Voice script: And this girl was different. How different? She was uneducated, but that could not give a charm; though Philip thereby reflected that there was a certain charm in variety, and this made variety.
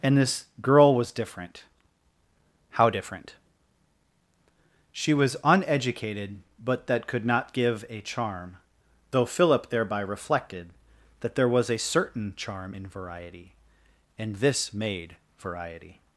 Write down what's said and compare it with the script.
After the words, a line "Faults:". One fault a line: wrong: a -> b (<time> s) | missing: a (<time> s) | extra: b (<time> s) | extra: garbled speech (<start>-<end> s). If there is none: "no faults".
And this girl was different. How different? She was uneducated, but that could not give a charm; though Philip thereby reflected that there was a certain charm in variety, and this made variety.
Faults:
no faults